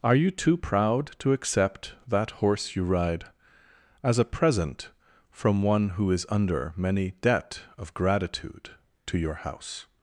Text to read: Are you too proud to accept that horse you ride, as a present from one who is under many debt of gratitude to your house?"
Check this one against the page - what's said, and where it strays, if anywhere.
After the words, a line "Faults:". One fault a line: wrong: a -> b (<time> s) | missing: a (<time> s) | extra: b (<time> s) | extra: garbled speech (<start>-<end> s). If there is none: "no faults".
Are you too proud to accept that horse you ride, as a present from one who is under many debt of gratitude to your house?"
Faults:
no faults